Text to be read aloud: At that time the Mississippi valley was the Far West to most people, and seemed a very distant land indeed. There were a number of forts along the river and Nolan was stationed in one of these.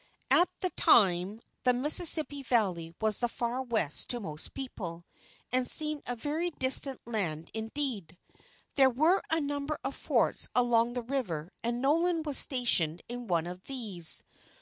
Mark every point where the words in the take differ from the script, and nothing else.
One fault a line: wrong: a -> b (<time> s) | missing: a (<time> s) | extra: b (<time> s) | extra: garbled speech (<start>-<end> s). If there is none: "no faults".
no faults